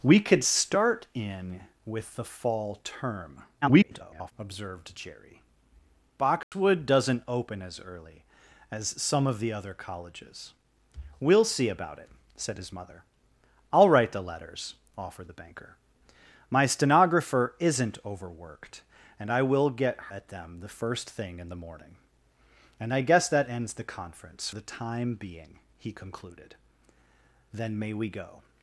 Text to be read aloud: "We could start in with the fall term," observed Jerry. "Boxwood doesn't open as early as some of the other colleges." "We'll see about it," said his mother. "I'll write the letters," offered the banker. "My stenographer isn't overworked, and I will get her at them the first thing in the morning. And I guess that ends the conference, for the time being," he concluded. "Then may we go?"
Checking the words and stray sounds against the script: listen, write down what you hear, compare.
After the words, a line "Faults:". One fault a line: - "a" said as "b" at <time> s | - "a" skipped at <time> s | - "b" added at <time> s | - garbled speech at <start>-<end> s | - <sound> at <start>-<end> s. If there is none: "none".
"We could start in with the fall term," [garbled] observed Jerry. "Boxwood doesn't open as early as some of the other colleges." "We'll see about it," said his mother. "I'll write the letters," offered the banker. "My stenographer isn't overworked, and I will get at them the first thing in the morning. And I guess that ends the conference, the time being," he concluded. "Then may we go?"
Faults:
- garbled speech at 3.6-4.3 s
- dropout at 6.4-6.5 s
- "her" skipped at 20.1 s
- "for" skipped at 24.5 s